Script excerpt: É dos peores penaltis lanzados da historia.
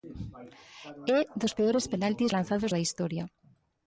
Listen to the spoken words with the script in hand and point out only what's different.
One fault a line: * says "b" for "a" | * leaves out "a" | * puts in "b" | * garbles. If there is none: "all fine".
all fine